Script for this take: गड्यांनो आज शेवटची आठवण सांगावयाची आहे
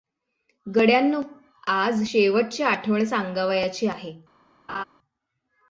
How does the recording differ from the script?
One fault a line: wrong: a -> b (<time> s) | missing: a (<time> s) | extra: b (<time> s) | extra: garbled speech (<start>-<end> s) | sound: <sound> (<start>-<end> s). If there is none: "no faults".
sound: laugh (4.7-4.8 s)